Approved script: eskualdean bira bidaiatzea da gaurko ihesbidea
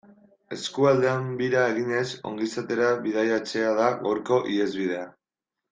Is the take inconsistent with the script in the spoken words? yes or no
yes